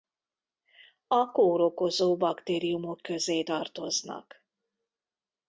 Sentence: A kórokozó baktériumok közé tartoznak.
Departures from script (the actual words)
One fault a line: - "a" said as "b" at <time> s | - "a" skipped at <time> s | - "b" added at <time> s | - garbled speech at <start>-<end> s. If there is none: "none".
none